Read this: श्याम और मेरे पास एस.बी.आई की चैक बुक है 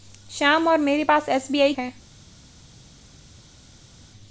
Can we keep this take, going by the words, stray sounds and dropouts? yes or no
no